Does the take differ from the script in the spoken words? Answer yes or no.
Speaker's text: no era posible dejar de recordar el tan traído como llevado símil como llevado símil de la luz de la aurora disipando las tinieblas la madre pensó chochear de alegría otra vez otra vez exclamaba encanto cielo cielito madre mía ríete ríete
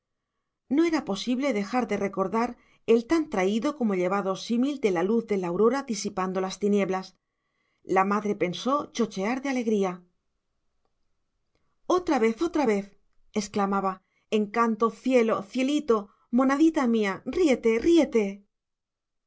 yes